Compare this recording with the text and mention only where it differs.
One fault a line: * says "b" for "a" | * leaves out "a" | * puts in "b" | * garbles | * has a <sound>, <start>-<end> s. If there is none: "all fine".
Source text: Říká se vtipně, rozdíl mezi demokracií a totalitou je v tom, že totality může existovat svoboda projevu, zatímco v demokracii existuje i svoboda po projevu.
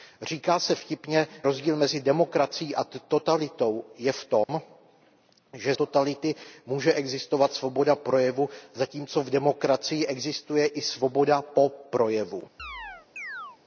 * has a dropout, 4.4-4.5 s
* has a chirp, 12.6-13.6 s